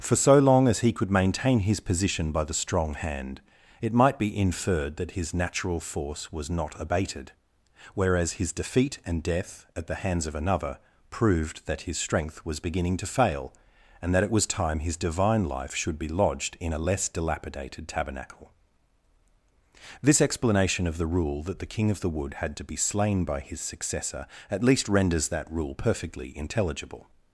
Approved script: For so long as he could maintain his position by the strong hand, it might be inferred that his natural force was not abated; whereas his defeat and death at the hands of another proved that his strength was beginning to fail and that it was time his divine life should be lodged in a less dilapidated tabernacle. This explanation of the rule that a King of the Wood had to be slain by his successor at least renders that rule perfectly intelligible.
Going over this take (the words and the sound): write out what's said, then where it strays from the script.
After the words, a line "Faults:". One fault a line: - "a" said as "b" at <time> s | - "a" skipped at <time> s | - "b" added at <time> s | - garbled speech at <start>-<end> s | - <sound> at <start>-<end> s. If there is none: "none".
For so long as he could maintain his position by the strong hand, it might be inferred that his natural force was not abated; whereas his defeat and death at the hands of another proved that his strength was beginning to fail and that it was time his divine life should be lodged in a less dilapidated tabernacle. This explanation of the rule that the King of the Wood had to be slain by his successor at least renders that rule perfectly intelligible.
Faults:
- "a" said as "the" at 21.6 s